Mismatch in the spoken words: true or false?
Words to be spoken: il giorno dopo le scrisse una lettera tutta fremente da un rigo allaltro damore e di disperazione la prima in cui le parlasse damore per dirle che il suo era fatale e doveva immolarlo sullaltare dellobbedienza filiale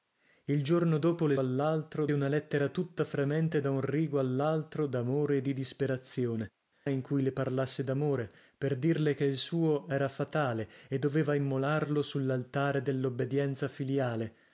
true